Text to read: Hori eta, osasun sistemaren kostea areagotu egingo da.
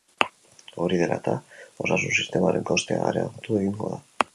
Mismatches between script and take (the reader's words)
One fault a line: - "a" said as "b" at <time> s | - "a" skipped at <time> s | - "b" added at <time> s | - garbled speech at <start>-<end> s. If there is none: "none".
- "dela" added at 1.0 s